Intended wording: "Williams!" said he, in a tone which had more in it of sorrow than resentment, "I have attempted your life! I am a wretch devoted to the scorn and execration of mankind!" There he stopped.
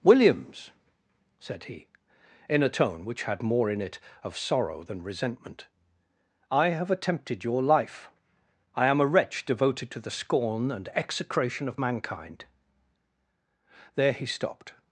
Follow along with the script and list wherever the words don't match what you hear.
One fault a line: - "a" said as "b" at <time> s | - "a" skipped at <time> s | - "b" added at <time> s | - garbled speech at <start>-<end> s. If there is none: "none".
none